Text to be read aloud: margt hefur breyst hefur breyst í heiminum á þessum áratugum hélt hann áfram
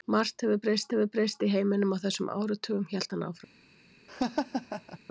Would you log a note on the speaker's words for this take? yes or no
no